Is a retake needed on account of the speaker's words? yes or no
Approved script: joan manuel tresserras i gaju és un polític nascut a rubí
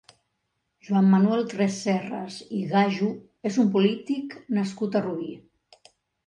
no